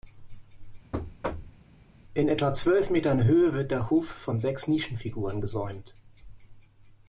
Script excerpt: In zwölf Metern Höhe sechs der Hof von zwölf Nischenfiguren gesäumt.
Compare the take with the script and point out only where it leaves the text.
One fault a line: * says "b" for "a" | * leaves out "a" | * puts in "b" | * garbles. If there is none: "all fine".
* puts in "etwa"
* says "wird" for "sechs"
* says "sechs" for "zwölf"